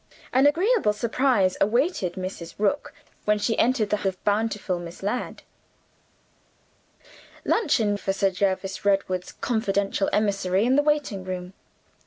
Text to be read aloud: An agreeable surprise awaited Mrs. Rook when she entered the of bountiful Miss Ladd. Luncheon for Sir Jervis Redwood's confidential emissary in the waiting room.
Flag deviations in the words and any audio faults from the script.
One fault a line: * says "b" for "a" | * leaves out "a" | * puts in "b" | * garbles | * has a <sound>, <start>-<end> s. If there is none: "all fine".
all fine